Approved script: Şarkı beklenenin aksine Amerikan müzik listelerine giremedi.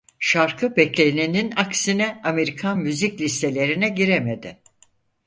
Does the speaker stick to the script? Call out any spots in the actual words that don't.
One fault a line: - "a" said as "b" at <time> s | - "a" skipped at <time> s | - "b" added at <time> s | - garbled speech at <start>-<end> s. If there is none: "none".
none